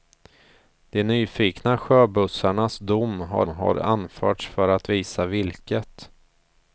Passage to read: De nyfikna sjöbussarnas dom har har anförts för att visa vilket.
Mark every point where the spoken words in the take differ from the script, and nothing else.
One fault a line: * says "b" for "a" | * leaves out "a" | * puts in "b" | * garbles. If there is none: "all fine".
all fine